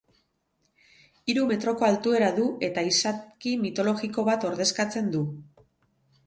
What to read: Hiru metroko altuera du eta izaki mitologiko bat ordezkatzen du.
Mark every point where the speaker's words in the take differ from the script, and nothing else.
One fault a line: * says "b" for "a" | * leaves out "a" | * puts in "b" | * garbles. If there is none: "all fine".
all fine